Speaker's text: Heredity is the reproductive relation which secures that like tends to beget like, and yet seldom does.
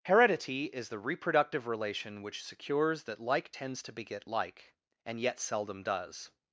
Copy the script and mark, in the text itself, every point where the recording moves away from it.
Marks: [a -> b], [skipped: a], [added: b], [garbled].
Heredity is the reproductive relation which secures that like tends to beget like, and yet seldom does.